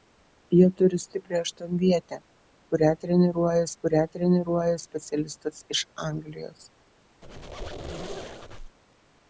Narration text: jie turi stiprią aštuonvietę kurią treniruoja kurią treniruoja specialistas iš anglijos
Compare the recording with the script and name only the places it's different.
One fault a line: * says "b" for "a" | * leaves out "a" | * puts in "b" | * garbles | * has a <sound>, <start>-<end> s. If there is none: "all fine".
* has a squeak, 7.2-8.8 s